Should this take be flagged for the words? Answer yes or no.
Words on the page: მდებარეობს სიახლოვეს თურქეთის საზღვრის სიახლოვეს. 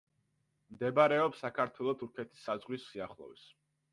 yes